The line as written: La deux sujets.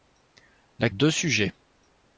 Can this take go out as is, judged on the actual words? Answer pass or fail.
pass